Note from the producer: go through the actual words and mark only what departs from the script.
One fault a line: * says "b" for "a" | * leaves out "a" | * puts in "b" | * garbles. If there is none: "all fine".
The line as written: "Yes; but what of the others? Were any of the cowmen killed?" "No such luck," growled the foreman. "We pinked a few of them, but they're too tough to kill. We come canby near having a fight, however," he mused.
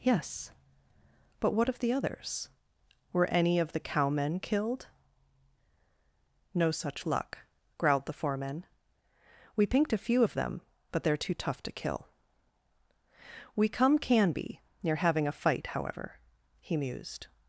all fine